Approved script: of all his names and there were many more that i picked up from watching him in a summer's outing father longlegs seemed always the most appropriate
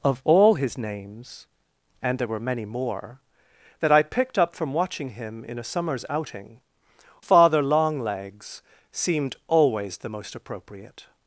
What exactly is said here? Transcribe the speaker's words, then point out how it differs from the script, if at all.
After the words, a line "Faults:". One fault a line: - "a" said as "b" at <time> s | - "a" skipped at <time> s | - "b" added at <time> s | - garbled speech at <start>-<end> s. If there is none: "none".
of all his names and there were many more that i picked up from watching him in a summer's outing father longlegs seemed always the most appropriate
Faults:
none